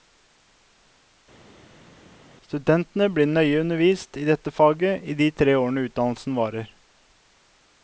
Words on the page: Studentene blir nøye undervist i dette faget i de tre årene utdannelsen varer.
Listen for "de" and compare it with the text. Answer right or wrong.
right